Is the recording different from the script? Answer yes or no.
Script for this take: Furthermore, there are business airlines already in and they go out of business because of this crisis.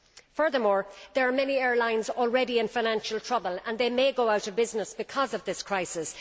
yes